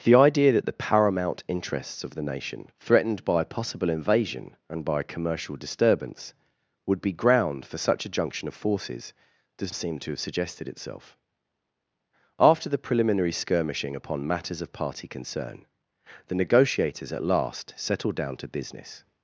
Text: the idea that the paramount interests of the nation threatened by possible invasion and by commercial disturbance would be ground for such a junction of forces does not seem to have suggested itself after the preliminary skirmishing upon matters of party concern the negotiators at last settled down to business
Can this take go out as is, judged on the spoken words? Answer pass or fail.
fail